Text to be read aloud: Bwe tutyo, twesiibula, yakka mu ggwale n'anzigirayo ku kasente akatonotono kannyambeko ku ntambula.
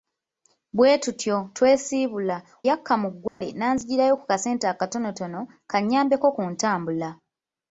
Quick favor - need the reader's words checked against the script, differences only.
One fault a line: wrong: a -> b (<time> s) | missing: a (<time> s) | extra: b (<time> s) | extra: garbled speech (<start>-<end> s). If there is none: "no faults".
no faults